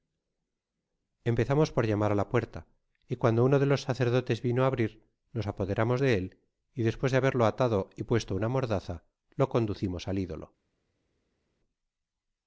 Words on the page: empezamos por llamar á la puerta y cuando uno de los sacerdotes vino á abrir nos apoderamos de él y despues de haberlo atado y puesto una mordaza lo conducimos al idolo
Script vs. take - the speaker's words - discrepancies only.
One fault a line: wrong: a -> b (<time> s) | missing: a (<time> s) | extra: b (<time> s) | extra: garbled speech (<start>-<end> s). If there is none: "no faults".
no faults